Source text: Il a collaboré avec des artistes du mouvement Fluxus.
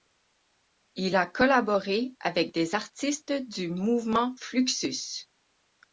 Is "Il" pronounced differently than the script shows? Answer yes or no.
no